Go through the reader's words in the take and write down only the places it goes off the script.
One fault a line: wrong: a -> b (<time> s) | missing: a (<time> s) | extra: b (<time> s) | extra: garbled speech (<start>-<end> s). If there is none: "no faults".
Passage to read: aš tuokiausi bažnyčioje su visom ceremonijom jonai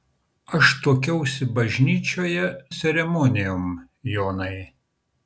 missing: su visom (2.5 s)